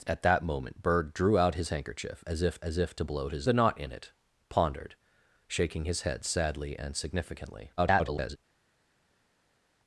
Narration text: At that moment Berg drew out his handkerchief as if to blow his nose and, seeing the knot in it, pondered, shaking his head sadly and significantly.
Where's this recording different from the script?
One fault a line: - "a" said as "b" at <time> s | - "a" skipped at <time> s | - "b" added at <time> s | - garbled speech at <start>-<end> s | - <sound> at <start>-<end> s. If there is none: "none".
- "as if" added at 2.6 s
- "nose and seeing" skipped at 3.5 s
- garbled speech at 7.8-8.4 s